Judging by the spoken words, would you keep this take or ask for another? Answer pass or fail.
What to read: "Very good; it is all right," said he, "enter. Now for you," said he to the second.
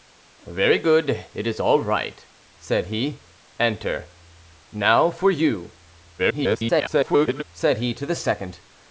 fail